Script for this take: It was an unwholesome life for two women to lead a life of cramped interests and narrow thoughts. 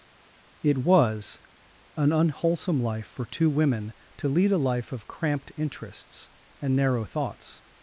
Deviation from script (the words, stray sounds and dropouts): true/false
false